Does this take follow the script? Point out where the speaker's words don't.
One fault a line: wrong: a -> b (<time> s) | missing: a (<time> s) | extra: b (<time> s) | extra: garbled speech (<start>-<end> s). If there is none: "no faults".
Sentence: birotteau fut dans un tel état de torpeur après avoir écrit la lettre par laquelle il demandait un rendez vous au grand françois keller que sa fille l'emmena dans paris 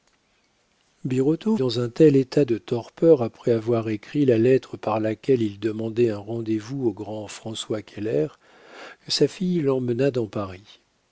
missing: fut (1.6 s)